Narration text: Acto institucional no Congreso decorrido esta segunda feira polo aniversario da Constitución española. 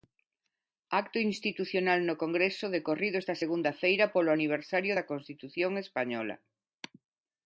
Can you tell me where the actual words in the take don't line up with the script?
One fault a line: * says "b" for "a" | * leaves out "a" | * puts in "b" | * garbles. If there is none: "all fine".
all fine